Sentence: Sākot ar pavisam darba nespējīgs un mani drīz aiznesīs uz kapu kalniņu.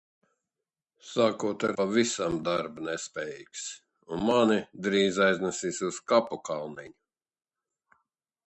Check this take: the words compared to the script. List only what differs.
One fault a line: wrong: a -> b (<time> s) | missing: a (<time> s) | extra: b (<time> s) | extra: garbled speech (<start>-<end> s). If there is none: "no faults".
no faults